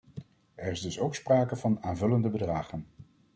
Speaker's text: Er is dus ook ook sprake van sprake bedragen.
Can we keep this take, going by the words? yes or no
no